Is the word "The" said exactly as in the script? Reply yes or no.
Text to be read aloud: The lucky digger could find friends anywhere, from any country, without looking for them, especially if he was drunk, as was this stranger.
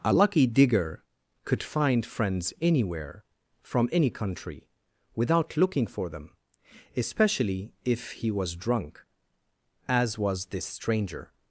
no